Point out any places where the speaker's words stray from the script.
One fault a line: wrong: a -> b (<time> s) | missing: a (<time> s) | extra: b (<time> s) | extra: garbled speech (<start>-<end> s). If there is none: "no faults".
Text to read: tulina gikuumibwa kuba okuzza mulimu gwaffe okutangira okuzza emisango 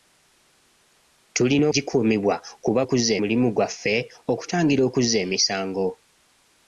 no faults